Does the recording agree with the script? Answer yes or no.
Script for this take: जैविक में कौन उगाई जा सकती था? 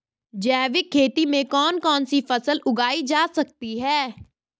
no